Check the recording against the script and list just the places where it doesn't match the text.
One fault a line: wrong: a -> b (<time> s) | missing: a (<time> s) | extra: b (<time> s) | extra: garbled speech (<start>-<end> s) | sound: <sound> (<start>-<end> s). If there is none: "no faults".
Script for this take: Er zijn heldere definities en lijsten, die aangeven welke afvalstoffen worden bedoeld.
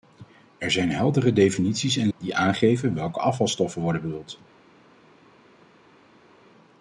missing: lijsten (2.1 s)